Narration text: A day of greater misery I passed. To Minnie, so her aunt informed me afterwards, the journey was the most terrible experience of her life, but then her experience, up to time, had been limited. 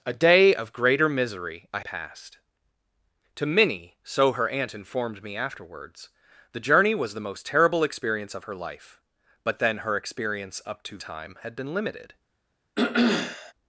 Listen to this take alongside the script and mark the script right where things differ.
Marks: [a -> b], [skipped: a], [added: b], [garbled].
A day of greater misery I passed. To Minnie, so her aunt informed me afterwards, the journey was the most terrible experience of her life, but then her experience, up to time, had been limited.